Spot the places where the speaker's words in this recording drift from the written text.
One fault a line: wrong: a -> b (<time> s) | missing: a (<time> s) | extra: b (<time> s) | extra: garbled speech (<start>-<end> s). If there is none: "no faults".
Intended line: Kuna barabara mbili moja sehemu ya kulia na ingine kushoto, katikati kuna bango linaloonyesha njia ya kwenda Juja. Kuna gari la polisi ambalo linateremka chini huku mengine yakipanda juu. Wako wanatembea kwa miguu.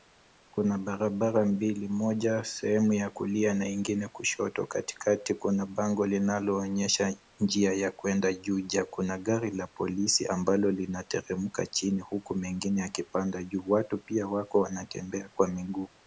extra: Watu pia (13.7 s)